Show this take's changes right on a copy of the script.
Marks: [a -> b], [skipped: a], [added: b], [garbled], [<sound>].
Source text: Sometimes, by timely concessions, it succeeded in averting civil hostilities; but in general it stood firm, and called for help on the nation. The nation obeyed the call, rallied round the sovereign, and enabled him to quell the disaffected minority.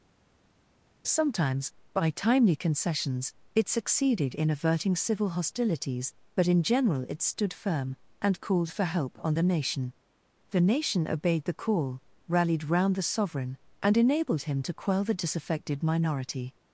Sometimes, by timely concessions, it succeeded in averting civil hostilities; but in general it stood firm, and called for help on the nation. The nation obeyed the call, rallied round the sovereign, and enabled him to quell the disaffected minority.